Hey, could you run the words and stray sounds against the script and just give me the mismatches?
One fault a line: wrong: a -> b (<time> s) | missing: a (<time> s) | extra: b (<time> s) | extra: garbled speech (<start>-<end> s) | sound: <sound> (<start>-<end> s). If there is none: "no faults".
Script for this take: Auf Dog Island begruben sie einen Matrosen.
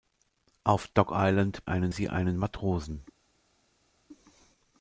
wrong: begruben -> einen (1.7 s)